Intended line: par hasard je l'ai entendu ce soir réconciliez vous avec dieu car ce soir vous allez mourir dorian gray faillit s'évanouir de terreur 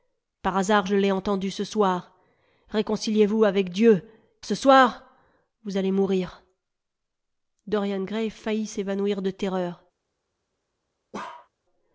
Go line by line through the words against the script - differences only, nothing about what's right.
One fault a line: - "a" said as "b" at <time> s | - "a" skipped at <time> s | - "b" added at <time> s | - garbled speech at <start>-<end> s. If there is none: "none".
- "car" skipped at 4.1 s